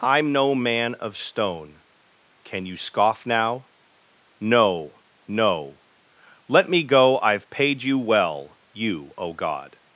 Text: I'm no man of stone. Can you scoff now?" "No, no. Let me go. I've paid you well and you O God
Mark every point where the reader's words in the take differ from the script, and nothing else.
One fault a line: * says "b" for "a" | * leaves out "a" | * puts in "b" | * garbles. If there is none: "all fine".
* leaves out "and"